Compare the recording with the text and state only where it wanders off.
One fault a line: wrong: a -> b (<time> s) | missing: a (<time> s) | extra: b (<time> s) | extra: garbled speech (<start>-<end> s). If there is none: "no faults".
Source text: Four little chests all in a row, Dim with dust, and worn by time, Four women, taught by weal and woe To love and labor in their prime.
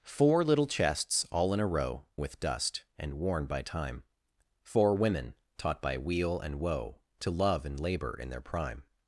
missing: Dim (2.0 s)